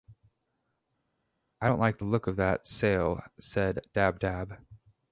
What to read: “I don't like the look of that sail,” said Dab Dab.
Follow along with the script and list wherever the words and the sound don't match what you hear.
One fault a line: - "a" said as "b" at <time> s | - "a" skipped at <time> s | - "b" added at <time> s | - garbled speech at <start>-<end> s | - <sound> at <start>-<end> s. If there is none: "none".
none